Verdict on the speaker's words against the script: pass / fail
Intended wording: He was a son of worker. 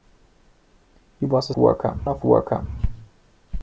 fail